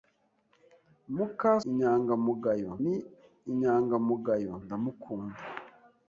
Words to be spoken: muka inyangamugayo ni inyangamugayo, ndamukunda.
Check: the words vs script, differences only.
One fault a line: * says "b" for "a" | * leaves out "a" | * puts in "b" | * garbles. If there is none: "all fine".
all fine